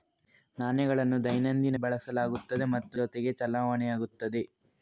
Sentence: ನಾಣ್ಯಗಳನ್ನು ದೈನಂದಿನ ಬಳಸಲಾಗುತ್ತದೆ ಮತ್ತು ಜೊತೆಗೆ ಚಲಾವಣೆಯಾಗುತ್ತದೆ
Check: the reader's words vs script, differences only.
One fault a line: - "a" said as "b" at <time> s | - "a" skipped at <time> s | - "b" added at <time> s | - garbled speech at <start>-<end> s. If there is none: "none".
none